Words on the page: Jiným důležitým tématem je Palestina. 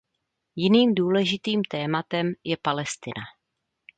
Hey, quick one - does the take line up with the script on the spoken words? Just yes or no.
yes